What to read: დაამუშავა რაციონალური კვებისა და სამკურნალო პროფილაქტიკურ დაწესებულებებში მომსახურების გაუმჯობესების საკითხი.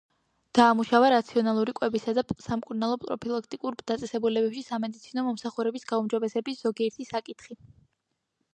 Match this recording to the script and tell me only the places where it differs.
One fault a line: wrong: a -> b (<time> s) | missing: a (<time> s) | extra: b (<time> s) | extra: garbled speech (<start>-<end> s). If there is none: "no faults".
extra: სამედიცინო (4.7 s)
extra: ზოგიერთი (6.7 s)